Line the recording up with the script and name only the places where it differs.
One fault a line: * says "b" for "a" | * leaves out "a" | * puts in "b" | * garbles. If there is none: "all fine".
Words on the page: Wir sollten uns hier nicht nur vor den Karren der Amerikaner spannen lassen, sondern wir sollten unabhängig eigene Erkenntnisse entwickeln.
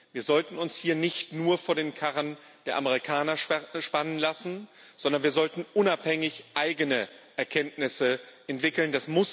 all fine